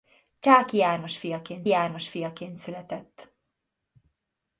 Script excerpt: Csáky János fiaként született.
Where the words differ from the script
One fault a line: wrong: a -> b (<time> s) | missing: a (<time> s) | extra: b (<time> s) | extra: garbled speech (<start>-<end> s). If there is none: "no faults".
extra: János fiaként (1.7 s)